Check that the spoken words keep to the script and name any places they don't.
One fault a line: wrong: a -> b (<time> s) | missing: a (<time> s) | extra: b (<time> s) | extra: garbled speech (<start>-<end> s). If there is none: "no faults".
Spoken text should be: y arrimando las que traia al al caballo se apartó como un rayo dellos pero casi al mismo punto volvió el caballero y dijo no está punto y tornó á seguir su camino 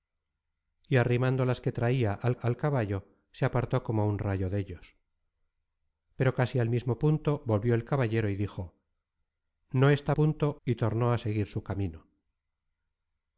no faults